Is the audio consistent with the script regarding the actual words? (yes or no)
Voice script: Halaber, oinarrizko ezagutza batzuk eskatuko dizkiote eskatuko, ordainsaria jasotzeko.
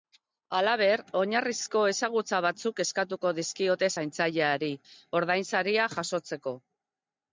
no